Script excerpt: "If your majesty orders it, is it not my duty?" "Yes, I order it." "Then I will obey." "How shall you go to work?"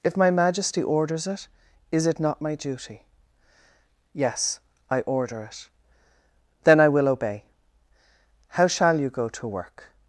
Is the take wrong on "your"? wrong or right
wrong